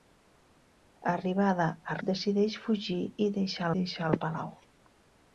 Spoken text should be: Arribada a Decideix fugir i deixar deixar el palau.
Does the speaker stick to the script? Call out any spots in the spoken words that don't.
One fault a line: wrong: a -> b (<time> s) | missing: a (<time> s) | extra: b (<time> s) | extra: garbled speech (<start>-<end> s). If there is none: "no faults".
no faults